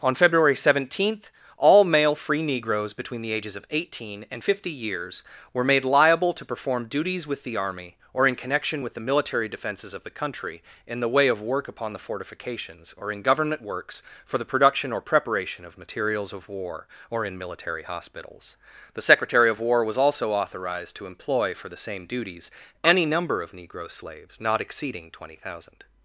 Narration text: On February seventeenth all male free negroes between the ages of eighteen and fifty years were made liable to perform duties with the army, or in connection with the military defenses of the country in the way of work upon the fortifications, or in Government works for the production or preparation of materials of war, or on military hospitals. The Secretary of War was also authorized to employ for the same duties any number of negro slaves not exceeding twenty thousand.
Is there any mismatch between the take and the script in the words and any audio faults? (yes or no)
yes